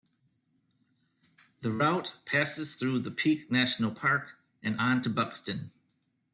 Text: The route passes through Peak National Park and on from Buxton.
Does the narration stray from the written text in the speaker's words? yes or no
yes